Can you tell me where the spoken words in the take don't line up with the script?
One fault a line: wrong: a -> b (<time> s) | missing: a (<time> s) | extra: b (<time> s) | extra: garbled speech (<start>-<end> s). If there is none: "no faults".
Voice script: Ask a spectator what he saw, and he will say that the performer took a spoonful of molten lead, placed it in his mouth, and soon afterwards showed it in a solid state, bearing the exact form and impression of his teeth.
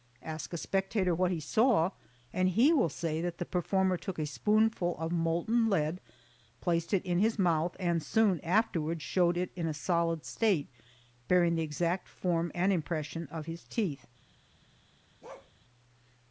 no faults